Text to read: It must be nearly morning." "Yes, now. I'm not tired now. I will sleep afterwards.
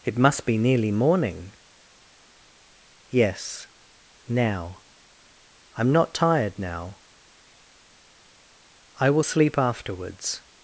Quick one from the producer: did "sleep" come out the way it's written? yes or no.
yes